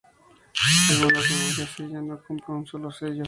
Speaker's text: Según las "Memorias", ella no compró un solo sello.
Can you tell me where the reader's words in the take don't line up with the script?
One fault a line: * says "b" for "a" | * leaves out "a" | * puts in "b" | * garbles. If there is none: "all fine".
all fine